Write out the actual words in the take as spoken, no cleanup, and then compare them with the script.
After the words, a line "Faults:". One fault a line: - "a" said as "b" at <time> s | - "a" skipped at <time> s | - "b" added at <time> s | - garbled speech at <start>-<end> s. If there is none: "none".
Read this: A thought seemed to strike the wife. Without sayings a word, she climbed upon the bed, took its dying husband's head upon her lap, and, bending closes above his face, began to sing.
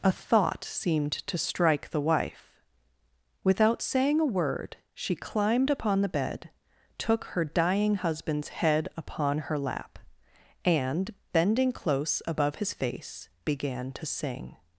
A thought seemed to strike the wife. Without saying a word, she climbed upon the bed, took her dying husband's head upon her lap, and, bending close above his face, began to sing.
Faults:
- "sayings" said as "saying" at 3.8 s
- "its" said as "her" at 7.2 s
- "closes" said as "close" at 11.7 s